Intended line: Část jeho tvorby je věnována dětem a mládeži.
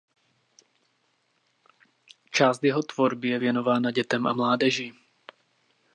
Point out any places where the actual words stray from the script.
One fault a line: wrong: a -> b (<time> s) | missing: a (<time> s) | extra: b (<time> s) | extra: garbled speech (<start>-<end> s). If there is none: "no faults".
no faults